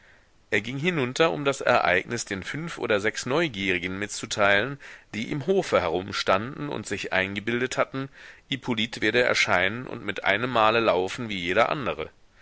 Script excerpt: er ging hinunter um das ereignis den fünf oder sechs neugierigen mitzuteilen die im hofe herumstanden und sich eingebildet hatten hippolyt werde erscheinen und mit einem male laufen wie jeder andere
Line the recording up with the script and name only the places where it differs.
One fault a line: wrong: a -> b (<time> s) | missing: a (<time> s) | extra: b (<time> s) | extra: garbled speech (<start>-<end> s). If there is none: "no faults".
no faults